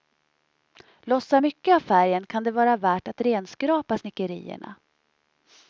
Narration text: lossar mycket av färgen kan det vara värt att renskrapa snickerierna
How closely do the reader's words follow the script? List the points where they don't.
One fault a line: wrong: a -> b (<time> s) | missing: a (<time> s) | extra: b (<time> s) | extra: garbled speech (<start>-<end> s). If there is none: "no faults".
no faults